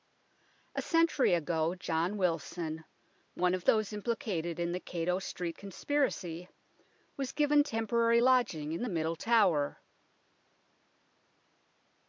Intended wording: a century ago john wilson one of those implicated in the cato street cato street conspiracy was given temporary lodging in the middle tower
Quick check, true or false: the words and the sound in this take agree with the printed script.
false